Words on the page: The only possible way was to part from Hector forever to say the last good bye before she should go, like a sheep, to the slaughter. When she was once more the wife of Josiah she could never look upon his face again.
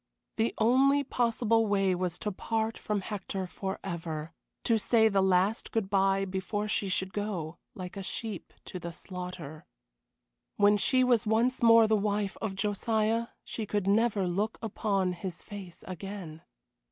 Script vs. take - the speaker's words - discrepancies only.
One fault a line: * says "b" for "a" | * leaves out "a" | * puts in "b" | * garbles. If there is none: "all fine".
all fine